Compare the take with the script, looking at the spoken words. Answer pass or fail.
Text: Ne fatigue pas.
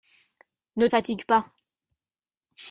pass